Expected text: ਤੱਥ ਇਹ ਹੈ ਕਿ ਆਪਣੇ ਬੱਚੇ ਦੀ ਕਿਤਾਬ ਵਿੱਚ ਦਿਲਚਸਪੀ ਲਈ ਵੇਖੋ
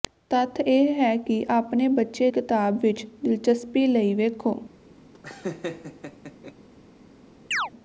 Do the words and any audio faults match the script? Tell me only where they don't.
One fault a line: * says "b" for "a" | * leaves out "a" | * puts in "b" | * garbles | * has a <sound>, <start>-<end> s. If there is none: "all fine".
* leaves out "ਦੀ"
* has a laugh, 5.1-6.5 s
* has a chirp, 7.5-7.7 s